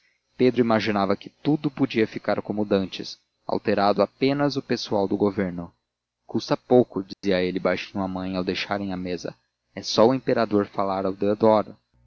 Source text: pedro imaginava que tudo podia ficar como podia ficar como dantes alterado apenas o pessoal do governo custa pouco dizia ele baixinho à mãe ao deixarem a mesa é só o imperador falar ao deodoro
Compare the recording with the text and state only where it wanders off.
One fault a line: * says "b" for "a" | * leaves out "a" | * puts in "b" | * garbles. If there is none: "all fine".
* leaves out "podia ficar como"